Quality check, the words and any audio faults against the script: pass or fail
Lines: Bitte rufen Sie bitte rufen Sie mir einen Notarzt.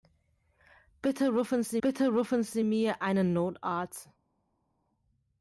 pass